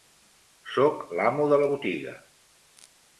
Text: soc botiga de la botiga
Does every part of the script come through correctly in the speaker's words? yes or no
no